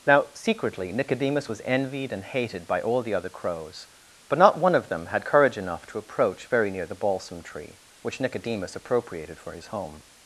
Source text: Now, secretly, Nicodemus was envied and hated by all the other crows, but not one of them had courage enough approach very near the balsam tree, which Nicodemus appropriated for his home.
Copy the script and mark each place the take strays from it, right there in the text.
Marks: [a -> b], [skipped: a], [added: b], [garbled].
Now, secretly, Nicodemus was envied and hated by all the other crows, but not one of them had courage enough [added: to] approach very near the balsam tree, which Nicodemus appropriated for his home.